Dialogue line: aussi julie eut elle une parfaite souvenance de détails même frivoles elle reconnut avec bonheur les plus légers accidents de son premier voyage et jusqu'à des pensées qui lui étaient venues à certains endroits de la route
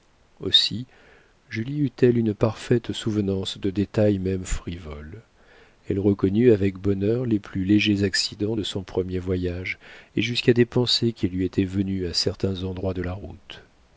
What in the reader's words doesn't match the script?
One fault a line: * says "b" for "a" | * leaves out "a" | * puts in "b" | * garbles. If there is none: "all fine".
all fine